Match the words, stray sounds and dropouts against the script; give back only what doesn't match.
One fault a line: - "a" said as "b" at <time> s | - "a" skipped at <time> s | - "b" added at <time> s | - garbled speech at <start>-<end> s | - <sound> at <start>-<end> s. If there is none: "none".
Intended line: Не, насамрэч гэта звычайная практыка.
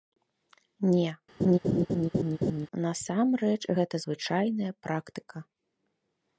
- laugh at 1.4-2.7 s